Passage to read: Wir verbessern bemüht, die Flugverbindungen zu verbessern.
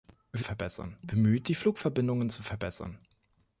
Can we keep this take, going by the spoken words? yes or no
yes